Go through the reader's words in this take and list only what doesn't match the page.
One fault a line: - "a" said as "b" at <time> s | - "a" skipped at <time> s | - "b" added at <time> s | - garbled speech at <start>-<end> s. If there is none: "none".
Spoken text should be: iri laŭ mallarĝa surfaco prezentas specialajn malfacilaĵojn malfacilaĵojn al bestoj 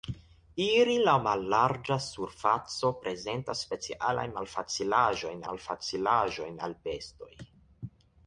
none